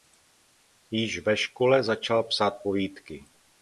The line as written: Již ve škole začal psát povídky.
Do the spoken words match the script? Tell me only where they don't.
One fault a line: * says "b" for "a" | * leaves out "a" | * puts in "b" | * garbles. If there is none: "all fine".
all fine